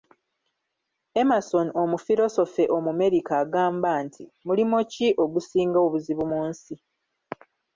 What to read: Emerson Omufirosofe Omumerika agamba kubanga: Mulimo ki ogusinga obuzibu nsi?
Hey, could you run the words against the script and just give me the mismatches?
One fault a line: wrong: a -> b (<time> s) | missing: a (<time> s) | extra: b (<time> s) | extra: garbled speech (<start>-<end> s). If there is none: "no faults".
wrong: kubanga -> nti (4.0 s)
extra: mu (6.3 s)